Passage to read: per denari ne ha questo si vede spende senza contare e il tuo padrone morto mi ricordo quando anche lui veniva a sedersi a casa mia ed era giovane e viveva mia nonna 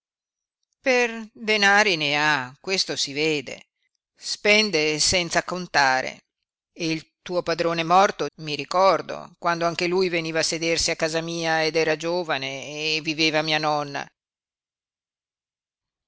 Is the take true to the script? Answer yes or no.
yes